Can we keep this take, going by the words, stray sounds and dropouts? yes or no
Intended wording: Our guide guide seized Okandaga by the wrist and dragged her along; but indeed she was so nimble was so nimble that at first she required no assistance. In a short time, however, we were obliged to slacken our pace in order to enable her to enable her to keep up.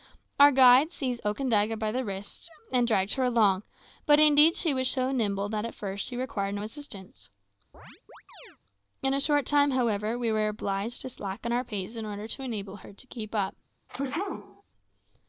no